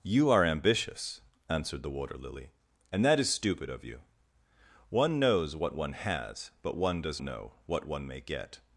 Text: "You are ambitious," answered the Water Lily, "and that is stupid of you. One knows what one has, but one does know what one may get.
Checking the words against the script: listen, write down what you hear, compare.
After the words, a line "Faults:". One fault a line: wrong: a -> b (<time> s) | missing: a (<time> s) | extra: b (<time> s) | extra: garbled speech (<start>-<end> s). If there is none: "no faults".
"You are ambitious," answered the Water Lily, "and that is stupid of you. One knows what one has, but one does know what one may get.
Faults:
no faults